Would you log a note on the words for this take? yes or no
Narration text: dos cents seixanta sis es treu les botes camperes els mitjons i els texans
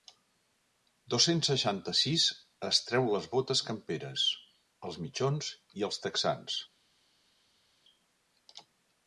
no